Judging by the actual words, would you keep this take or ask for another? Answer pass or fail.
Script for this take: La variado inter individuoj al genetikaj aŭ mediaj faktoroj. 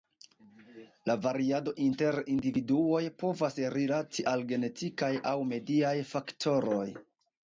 fail